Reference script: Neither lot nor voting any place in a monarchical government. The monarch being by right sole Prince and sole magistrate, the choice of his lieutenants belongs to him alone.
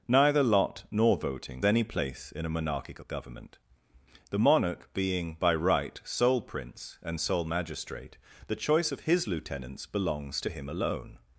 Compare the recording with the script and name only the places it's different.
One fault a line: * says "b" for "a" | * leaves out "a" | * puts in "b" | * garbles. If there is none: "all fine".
all fine